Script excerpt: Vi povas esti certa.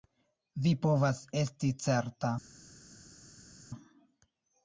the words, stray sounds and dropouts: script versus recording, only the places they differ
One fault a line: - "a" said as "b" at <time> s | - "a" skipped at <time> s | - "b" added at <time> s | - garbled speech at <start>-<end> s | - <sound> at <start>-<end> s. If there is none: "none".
none